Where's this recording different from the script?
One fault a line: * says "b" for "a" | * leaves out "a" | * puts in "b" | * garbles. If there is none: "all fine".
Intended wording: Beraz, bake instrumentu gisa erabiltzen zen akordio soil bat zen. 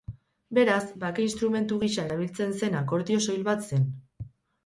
all fine